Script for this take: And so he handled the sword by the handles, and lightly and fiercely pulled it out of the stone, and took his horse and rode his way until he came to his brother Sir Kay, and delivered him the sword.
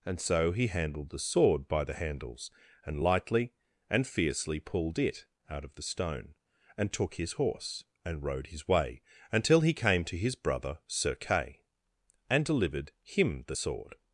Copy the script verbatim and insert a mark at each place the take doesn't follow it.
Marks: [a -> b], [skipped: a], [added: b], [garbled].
And so he handled the sword by the handles, and lightly and fiercely pulled it out of the stone, and took his horse and rode his way until he came to his brother Sir Kay, and delivered him the sword.